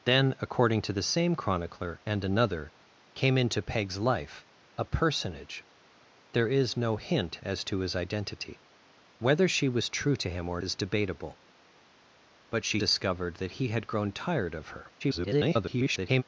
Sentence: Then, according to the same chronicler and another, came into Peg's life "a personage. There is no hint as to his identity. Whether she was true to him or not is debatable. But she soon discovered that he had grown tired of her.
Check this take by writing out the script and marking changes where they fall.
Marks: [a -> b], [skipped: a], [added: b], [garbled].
Then, according to the same chronicler and another, came into Peg's life "a personage. There is no hint as to his identity. Whether she was true to him or [skipped: not] is debatable. But she [skipped: soon] discovered that he had grown tired of her. [garbled]